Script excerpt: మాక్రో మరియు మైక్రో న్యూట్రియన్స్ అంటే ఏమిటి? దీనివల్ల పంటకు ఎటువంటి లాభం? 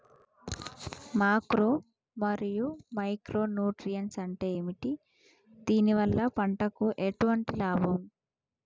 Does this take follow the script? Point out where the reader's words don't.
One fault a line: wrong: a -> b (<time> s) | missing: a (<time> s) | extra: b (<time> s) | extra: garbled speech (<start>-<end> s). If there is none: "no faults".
no faults